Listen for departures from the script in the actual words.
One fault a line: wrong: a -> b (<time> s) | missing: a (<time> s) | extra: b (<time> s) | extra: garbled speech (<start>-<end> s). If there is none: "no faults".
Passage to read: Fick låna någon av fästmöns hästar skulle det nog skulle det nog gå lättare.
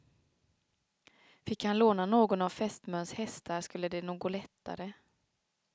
extra: han (1.6 s)
missing: skulle det nog (4.2 s)